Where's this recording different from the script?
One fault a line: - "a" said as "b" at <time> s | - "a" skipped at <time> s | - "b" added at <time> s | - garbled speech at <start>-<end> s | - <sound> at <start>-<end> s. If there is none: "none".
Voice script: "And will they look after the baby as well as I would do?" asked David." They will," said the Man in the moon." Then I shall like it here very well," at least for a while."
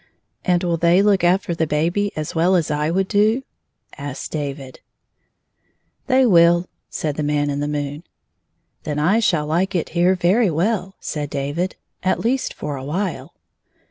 - "said David" added at 11.0 s